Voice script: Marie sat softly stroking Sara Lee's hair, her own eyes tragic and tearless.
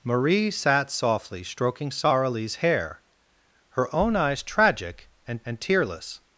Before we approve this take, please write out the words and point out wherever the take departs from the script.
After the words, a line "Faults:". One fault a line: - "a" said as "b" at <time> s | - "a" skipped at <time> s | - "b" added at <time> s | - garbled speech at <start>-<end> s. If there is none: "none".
Marie sat softly stroking Sara Lee's hair, her own eyes tragic and and tearless.
Faults:
- "and" added at 5.5 s